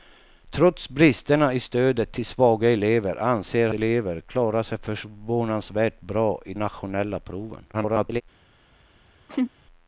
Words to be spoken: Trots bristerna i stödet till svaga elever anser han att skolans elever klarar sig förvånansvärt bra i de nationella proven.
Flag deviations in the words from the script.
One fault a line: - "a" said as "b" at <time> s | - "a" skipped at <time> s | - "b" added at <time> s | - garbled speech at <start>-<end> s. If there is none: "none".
- "han att skolans" skipped at 3.7 s
- "de" skipped at 6.5 s
- garbled speech at 7.7-8.2 s